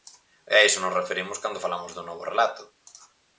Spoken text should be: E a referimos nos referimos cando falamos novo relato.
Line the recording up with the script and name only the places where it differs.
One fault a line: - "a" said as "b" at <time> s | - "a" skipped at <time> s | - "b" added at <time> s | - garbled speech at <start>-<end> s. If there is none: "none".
- "referimos" said as "iso" at 0.7 s
- "dun" added at 1.9 s